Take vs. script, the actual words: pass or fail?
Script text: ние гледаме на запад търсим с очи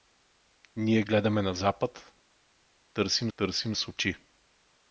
fail